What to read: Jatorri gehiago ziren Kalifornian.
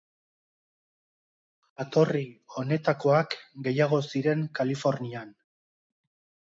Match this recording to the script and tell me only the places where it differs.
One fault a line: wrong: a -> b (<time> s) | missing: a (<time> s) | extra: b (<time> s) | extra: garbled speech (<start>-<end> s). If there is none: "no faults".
extra: honetakoak (2.6 s)